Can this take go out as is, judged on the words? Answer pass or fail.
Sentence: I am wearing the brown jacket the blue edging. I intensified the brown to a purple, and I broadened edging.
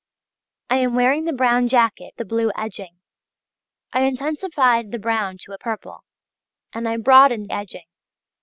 pass